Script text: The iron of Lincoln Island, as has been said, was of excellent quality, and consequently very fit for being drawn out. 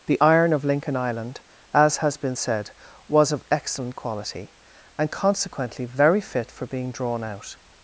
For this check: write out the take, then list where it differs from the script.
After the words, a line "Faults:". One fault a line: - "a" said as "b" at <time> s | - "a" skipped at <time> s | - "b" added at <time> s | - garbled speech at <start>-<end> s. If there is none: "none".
The iron of Lincoln Island, as has been said, was of excellent quality, and consequently very fit for being drawn out.
Faults:
none